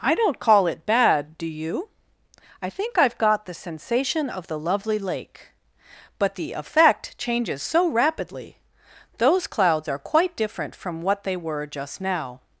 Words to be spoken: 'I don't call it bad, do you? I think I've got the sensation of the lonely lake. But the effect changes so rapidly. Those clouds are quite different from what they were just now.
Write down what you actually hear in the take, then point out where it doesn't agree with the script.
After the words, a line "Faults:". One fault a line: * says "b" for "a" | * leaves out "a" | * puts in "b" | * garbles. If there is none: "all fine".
'I don't call it bad, do you? I think I've got the sensation of the lovely lake. But the effect changes so rapidly. Those clouds are quite different from what they were just now.
Faults:
* says "lovely" for "lonely"